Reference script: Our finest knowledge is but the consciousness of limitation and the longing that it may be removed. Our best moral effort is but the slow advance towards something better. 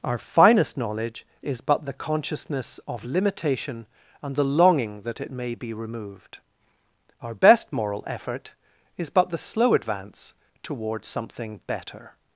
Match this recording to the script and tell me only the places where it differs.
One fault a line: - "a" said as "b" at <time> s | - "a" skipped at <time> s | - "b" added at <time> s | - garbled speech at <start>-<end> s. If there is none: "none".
none